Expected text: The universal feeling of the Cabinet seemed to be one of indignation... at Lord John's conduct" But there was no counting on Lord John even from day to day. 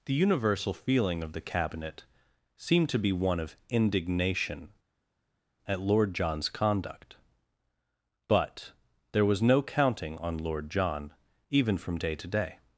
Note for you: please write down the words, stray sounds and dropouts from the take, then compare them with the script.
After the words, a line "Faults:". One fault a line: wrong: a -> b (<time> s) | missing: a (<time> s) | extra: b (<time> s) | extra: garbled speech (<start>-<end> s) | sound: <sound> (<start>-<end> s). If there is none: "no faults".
The universal feeling of the Cabinet seemed to be one of indignation... at Lord John's conduct" But there was no counting on Lord John even from day to day.
Faults:
no faults